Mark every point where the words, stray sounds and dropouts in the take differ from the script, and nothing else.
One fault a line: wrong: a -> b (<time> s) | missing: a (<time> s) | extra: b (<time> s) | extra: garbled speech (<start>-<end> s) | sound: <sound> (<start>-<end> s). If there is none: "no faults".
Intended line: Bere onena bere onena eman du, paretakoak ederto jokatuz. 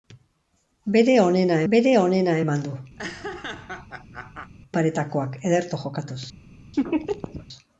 sound: laugh (3.0-4.5 s)
sound: laugh (6.7-7.5 s)